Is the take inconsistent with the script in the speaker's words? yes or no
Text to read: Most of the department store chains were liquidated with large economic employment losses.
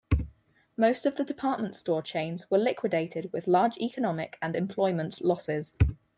yes